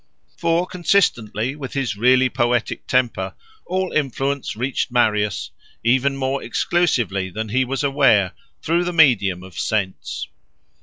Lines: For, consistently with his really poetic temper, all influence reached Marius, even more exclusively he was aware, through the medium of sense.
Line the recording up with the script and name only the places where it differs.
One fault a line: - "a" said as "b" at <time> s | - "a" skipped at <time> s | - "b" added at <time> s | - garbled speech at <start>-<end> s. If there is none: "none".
- "than" added at 7.3 s